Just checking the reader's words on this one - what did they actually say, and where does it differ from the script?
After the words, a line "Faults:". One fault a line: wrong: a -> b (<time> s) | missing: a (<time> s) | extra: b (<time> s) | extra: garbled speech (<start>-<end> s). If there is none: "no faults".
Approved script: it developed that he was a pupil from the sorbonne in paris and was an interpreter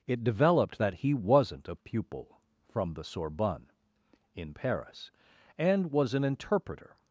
it developed that he wasn't a pupil from the sorbonne in paris and was an interpreter
Faults:
wrong: was -> wasn't (1.1 s)